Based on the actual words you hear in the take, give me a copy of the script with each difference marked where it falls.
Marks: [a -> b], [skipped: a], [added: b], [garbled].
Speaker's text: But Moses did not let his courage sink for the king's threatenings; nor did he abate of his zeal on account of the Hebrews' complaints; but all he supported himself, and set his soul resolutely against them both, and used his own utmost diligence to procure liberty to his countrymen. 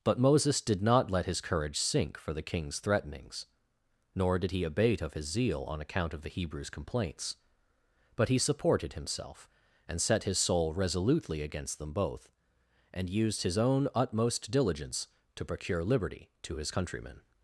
But Moses did not let his courage sink for the king's threatenings; nor did he abate of his zeal on account of the Hebrews' complaints; but [skipped: all] he supported himself, and set his soul resolutely against them both, and used his own utmost diligence to procure liberty to his countrymen.